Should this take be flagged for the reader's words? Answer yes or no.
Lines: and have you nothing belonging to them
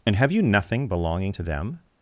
no